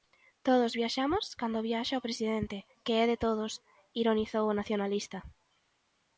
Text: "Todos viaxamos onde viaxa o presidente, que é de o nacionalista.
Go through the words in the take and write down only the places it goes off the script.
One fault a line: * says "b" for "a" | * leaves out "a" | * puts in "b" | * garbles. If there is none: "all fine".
* says "cando" for "onde"
* puts in "todos ironizou"